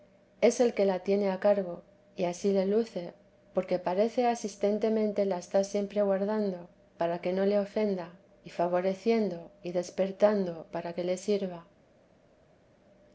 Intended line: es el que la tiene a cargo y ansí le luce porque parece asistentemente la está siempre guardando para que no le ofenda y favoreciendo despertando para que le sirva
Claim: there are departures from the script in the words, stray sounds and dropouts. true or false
true